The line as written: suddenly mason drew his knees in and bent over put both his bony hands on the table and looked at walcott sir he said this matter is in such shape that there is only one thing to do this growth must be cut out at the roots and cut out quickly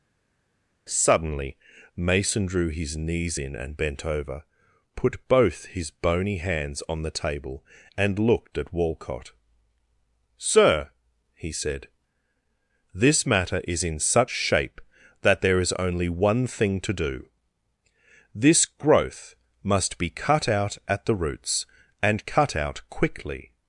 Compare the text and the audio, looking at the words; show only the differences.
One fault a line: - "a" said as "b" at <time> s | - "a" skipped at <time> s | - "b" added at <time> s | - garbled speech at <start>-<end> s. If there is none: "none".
none